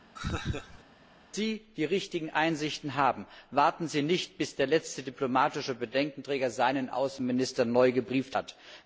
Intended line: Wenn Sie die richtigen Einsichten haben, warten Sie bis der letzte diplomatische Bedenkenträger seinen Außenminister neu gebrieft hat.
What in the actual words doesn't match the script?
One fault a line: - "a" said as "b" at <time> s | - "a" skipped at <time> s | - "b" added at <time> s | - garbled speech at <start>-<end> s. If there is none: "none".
- "nicht" added at 4.0 s